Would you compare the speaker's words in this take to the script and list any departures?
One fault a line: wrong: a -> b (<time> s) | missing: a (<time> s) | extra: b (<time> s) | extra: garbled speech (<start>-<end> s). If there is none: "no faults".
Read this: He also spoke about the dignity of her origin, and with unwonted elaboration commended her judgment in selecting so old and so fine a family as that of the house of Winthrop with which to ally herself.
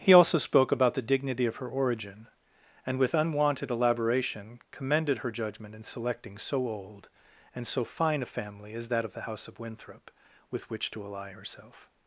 no faults